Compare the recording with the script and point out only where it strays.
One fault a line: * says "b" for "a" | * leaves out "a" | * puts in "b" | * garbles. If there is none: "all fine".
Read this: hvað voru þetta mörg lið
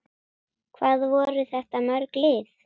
all fine